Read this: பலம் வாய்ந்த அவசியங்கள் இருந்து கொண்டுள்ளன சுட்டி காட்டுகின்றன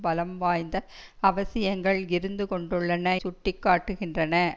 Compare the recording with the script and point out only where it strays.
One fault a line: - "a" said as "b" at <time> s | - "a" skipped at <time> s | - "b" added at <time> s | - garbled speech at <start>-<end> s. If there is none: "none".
none